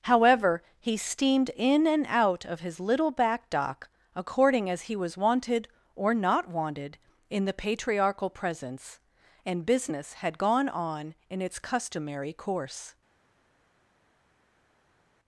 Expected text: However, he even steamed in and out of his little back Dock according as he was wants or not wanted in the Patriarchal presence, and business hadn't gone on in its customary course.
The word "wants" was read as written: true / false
false